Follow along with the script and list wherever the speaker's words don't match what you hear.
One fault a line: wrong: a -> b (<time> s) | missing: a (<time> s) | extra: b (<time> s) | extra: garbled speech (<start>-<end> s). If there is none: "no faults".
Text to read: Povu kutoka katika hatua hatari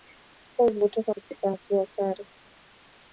no faults